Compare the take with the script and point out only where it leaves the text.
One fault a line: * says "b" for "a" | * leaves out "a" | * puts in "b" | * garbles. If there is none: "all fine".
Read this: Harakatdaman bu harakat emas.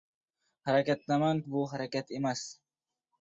all fine